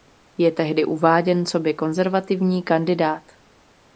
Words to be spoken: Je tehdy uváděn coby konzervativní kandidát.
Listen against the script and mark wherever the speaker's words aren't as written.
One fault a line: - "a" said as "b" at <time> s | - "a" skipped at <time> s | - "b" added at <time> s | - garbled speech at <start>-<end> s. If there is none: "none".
none